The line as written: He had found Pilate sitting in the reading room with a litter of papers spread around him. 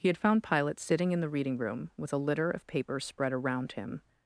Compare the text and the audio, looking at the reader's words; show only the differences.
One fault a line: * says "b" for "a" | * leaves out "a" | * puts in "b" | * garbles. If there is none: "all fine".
all fine